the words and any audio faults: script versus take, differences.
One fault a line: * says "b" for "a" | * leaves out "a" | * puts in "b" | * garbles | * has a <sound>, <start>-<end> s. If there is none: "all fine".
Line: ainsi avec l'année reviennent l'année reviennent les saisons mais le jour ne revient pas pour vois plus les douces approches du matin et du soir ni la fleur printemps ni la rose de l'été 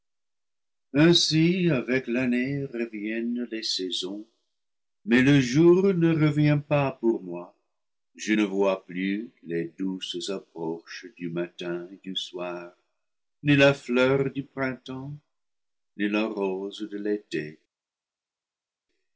* leaves out "l'année reviennent"
* puts in "moi je ne"
* puts in "du"